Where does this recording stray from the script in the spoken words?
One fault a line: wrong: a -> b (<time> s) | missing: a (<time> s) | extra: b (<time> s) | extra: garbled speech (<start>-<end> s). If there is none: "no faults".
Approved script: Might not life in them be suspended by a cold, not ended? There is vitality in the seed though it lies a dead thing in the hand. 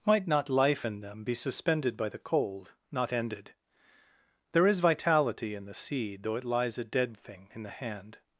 wrong: a -> the (2.1 s)